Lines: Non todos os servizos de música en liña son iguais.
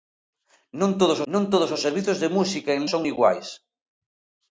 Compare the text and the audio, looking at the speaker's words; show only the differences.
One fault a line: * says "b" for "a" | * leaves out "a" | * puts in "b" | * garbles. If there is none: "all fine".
* puts in "non todos"
* leaves out "liña"